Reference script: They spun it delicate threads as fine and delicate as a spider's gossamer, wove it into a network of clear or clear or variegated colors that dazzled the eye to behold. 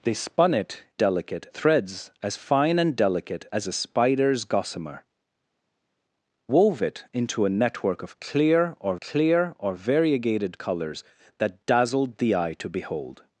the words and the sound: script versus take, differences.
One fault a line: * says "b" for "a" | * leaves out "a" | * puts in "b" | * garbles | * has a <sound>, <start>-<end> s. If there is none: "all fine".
all fine